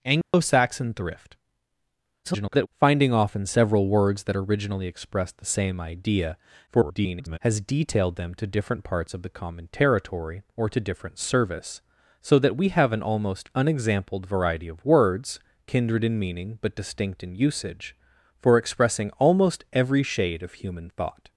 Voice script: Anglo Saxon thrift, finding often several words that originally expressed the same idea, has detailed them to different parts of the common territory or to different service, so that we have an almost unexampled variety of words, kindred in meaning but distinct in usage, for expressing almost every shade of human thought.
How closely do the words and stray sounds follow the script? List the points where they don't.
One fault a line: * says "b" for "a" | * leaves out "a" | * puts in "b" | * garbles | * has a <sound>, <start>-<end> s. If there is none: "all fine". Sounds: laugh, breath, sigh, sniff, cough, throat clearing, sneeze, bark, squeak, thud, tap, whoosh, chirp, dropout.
* has a dropout, 0.2-0.3 s
* garbles
* garbles